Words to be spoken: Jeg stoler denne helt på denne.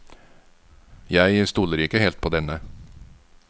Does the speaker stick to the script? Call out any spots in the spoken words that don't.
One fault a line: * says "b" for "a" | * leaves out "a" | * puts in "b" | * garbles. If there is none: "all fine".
* says "ikke" for "denne"